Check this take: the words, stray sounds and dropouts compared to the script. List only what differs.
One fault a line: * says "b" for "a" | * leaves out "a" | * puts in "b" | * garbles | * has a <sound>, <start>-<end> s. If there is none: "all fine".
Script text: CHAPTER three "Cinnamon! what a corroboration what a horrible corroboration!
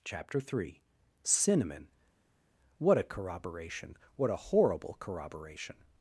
all fine